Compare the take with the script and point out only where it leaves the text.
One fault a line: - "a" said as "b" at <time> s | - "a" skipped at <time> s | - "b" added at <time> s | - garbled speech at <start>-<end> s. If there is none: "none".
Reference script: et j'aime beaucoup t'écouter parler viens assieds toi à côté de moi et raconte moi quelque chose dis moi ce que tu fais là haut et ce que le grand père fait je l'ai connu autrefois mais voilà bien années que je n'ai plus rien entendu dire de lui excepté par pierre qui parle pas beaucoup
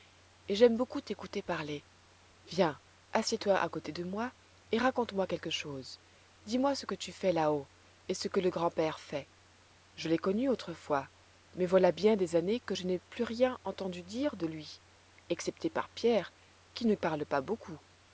- "des" added at 12.2 s
- "ne" added at 16.9 s